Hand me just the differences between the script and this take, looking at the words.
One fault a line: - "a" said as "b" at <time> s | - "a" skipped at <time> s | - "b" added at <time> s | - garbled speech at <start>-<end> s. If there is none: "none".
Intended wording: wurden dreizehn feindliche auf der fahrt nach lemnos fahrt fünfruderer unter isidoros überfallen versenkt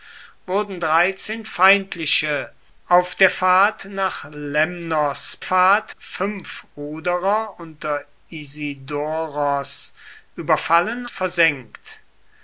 none